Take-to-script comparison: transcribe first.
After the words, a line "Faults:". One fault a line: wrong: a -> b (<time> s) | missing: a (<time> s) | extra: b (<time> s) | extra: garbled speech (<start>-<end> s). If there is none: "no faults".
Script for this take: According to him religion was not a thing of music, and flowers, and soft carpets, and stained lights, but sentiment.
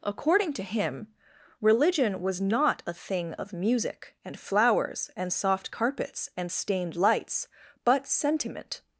According to him religion was not a thing of music, and flowers, and soft carpets, and stained lights, but sentiment.
Faults:
no faults